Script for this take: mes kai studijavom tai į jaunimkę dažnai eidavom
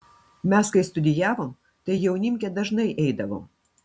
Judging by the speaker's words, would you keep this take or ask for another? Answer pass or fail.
pass